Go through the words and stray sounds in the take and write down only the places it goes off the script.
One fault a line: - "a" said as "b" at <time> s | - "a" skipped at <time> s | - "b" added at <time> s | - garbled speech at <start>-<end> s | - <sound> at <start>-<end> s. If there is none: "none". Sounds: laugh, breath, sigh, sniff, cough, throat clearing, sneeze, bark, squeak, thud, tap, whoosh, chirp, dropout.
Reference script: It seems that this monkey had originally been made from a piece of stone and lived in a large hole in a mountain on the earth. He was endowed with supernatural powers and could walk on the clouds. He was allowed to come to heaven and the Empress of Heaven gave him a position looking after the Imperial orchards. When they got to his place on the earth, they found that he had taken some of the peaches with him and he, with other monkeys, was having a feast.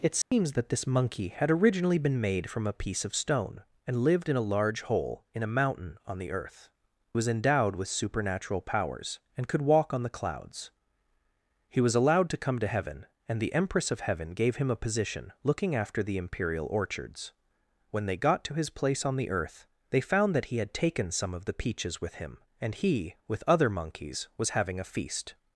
- dropout at 0.2-0.3 s
- "He" skipped at 6.7 s